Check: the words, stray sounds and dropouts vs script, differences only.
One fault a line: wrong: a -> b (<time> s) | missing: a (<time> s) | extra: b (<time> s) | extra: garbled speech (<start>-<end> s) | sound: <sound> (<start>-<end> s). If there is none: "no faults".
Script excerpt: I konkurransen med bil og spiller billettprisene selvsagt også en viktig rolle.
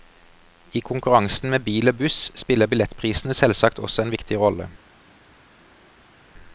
extra: buss (2.0 s)